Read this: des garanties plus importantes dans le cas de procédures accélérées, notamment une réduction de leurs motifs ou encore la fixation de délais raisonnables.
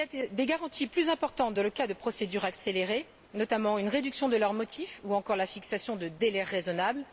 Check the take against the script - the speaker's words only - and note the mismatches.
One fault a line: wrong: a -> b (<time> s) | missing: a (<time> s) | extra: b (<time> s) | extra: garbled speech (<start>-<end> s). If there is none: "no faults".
no faults